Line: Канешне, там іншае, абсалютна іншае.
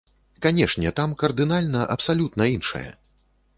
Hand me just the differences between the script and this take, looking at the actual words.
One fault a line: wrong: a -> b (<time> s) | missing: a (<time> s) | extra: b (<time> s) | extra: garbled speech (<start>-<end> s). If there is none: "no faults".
wrong: іншае -> кардынальна (1.2 s)